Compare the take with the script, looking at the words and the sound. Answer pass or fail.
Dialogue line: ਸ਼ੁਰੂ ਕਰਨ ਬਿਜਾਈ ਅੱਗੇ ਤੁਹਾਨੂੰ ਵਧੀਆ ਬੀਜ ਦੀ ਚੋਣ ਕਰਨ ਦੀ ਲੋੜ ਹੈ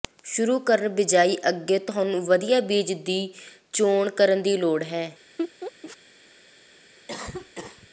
fail